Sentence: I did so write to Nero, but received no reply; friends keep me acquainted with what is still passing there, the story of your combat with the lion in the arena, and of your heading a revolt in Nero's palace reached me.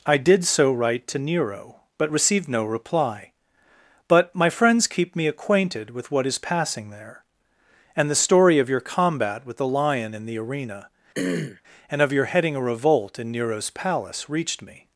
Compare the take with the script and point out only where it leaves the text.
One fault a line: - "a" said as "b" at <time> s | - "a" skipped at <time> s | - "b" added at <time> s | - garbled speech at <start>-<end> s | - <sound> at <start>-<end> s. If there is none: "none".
- "but my" added at 4.1 s
- "still" skipped at 6.4 s
- "and" added at 7.9 s
- throat clearing at 11.1-11.6 s